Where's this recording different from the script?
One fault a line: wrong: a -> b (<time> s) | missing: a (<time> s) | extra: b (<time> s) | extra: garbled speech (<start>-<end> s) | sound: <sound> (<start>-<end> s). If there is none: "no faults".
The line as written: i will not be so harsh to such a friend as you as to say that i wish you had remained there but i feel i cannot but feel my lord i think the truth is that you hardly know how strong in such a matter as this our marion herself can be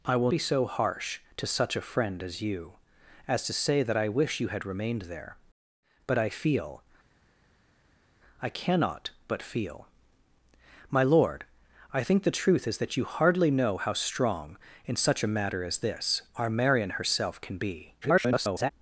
missing: not (0.3 s)
extra: garbled speech (18.0-18.7 s)